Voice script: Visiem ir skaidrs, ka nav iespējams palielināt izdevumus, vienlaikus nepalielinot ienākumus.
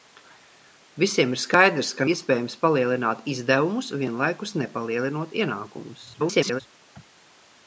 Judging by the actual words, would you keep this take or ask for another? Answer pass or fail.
fail